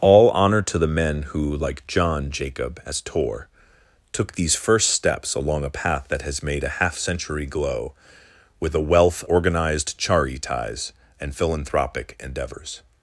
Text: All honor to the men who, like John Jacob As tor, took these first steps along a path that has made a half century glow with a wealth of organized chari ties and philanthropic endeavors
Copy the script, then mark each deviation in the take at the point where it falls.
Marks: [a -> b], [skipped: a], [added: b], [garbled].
All honor to the men who, like John Jacob As tor, took these first steps along a path that has made a half century glow with a wealth [skipped: of] organized chari ties and philanthropic endeavors